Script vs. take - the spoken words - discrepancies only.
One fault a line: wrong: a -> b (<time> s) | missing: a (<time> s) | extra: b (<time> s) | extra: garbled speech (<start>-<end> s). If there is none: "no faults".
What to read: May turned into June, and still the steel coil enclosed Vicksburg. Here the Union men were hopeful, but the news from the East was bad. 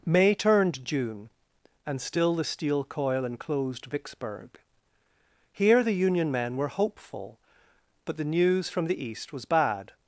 missing: into (0.8 s)